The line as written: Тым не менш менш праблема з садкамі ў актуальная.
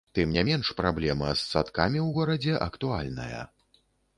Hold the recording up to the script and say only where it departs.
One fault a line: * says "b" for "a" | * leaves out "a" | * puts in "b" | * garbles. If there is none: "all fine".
* leaves out "менш"
* puts in "горадзе"